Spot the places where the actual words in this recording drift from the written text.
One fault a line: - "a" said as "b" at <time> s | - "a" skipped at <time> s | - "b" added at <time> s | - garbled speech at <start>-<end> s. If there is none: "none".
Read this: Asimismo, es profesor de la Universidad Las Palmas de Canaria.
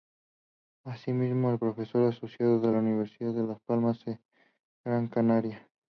- "asociado" added at 2.0 s
- "de" added at 3.3 s
- "Gran" added at 4.9 s